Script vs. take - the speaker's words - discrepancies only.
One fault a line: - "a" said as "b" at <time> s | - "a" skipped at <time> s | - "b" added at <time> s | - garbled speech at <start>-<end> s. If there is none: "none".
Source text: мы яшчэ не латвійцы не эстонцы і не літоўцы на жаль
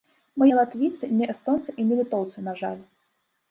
- "яшчэ" skipped at 0.5 s